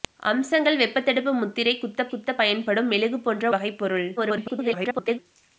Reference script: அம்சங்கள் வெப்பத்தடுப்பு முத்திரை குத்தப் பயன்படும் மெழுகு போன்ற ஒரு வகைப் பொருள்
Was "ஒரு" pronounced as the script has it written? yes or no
no